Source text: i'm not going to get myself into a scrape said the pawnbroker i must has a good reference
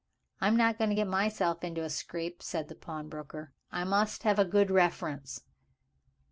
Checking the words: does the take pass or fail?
fail